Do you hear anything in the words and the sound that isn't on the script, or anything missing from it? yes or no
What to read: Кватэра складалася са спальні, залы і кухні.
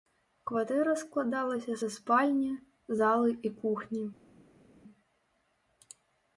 no